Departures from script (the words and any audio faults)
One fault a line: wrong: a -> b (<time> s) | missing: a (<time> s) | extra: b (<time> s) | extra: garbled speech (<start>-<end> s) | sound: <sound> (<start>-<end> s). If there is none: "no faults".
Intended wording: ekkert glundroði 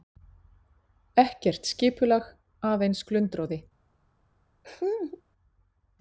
extra: skipulag aðeins (1.7 s)
sound: laugh (4.6-5.2 s)